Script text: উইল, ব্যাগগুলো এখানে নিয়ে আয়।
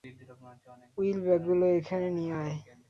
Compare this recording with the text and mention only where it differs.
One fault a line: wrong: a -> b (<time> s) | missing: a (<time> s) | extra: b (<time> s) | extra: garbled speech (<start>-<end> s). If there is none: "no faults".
no faults